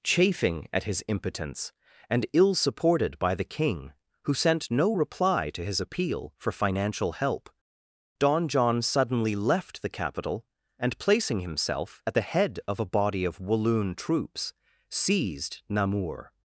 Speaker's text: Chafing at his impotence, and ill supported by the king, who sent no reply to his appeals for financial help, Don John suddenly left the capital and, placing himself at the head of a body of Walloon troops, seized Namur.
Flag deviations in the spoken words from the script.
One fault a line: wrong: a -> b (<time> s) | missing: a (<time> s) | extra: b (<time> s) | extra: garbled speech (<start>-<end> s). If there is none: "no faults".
wrong: appeals -> appeal (5.8 s)